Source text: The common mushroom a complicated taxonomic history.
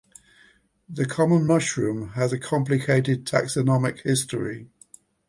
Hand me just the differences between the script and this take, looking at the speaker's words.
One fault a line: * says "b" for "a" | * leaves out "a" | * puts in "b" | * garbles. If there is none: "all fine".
* puts in "has"